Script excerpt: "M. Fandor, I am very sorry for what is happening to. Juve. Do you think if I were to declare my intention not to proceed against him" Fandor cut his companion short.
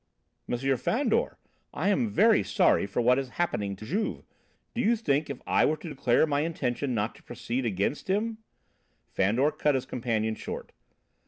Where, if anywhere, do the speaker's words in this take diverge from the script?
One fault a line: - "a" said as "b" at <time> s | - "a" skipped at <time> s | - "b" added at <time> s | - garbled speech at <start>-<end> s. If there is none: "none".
none